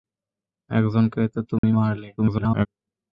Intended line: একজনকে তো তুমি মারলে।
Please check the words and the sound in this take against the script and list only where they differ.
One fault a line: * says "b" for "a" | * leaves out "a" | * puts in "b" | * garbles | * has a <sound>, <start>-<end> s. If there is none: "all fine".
* has a dropout, 1.6-1.6 s
* garbles